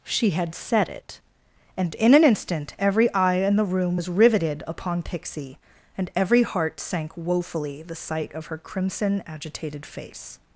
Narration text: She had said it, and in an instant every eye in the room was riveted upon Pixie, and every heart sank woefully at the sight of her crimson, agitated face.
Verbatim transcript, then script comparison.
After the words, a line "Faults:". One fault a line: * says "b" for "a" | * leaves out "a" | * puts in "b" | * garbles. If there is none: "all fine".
She had said it, and in an instant every eye in the room was riveted upon Pixie, and every heart sank woefully the sight of her crimson, agitated face.
Faults:
* leaves out "at"